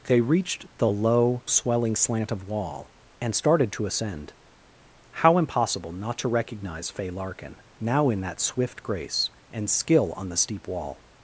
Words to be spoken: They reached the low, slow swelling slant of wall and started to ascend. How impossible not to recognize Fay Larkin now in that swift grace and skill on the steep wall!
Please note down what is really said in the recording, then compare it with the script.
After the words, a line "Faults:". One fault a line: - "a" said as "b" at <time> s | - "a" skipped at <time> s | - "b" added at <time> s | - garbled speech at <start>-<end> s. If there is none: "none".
They reached the low, swelling slant of wall and started to ascend. How impossible not to recognize Fay Larkin now in that swift grace and skill on the steep wall!
Faults:
- "slow" skipped at 1.4 s